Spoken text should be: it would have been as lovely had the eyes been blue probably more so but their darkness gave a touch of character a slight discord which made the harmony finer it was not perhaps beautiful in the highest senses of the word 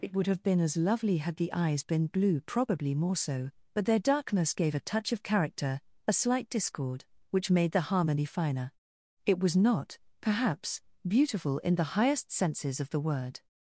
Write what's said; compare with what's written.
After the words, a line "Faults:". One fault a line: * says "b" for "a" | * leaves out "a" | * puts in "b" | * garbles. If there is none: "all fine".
it would have been as lovely had the eyes been blue probably more so but their darkness gave a touch of character a slight discord which made the harmony finer it was not perhaps beautiful in the highest senses of the word
Faults:
all fine